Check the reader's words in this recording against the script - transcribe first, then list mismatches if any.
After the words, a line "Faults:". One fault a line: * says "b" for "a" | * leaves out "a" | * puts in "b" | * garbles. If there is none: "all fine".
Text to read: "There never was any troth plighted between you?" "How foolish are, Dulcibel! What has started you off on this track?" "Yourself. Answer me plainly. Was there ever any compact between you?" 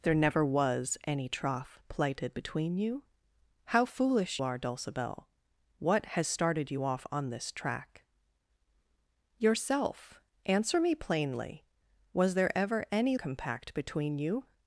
"There never was any troth plighted between you?" "How foolish are, Dulcibel! What has started you off on this track?" "Yourself. Answer me plainly. Was there ever any compact between you?"
Faults:
all fine